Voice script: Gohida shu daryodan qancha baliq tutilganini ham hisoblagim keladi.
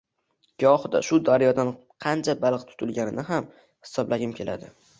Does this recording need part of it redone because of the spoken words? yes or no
no